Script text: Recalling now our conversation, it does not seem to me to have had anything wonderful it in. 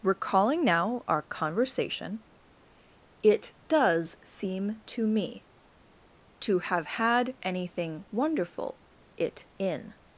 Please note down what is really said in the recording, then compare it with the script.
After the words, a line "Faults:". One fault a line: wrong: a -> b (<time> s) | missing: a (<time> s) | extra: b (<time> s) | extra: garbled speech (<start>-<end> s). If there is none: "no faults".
Recalling now our conversation, it does seem to me to have had anything wonderful it in.
Faults:
missing: not (4.2 s)